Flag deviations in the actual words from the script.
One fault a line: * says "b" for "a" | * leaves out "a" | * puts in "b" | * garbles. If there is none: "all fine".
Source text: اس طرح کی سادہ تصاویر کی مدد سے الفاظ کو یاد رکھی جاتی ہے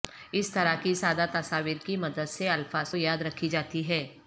* leaves out "کو"